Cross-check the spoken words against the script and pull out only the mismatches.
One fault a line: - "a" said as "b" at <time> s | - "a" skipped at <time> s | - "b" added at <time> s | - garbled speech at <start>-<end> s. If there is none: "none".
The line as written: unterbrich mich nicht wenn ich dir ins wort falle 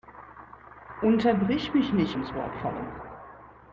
- "wenn ich dir" skipped at 2.2 s